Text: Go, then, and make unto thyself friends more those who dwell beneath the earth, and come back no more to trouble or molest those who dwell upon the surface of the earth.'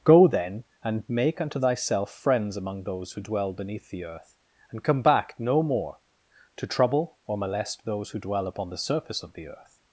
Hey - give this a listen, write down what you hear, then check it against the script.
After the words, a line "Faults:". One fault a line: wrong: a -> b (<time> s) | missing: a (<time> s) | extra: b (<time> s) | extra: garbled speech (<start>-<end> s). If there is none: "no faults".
Go, then, and make unto thyself friends among those who dwell beneath the earth, and come back no more to trouble or molest those who dwell upon the surface of the earth.'
Faults:
wrong: more -> among (2.6 s)